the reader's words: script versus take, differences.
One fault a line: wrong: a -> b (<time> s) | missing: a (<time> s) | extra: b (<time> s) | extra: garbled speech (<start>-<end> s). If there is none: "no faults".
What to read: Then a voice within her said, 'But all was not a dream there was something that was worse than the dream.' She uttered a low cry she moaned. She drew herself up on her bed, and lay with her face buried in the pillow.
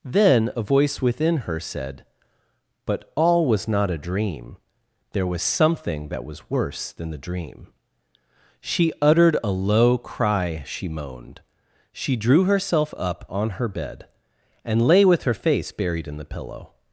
no faults